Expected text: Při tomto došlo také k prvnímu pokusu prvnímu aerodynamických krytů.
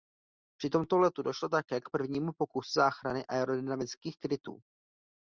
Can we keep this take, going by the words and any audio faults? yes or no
no